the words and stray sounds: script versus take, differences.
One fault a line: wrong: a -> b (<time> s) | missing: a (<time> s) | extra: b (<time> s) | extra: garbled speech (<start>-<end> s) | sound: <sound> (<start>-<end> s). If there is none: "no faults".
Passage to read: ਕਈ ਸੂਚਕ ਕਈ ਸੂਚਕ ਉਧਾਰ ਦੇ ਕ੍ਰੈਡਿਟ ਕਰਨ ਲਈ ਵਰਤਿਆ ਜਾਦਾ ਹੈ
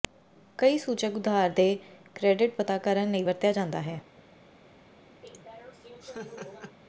missing: ਕਈ ਸੂਚਕ (1.1 s)
extra: ਪਤਾ (2.6 s)
sound: laugh (5.2-6.8 s)